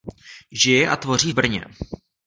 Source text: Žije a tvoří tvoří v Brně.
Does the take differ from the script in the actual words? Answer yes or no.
yes